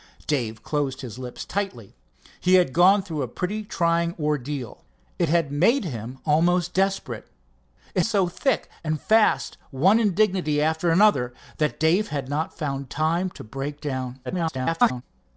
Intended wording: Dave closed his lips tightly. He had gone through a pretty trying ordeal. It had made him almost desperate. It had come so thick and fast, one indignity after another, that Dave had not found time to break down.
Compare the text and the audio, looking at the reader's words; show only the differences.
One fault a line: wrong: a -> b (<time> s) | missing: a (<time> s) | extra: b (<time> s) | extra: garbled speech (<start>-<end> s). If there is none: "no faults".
missing: had come (8.0 s)
extra: garbled speech (14.2-15.0 s)